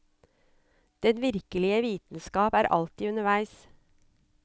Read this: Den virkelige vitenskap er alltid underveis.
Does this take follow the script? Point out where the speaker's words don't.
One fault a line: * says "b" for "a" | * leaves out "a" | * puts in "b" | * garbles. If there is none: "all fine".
all fine